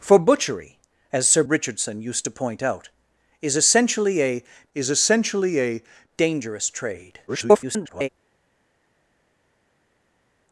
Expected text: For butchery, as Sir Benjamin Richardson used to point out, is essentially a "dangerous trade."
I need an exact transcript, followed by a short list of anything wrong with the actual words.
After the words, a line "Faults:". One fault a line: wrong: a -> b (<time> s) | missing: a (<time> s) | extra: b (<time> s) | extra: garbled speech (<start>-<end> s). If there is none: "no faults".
For butchery, as Sir Richardson used to point out, is essentially a is essentially a "dangerous trade." [garbled]
Faults:
missing: Benjamin (1.4 s)
extra: is essentially a (4.7 s)
extra: garbled speech (7.3-8.1 s)